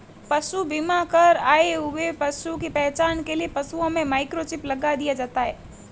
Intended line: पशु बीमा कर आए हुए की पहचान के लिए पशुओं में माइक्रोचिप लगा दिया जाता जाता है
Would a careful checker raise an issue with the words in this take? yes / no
yes